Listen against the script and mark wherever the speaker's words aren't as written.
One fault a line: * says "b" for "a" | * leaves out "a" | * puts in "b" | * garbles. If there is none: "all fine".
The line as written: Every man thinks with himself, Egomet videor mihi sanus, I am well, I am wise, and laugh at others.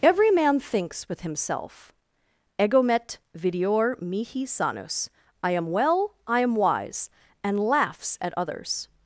* says "laughs" for "laugh"